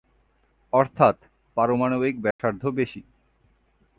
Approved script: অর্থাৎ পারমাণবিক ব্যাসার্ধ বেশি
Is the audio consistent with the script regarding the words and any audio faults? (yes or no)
no